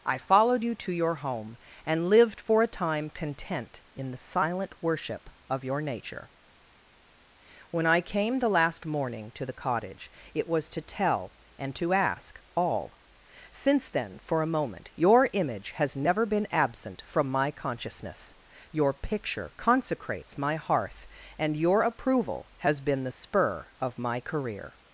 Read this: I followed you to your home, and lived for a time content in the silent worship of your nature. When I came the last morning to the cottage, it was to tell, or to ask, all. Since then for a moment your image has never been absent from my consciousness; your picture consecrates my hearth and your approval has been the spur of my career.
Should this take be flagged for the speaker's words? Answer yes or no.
yes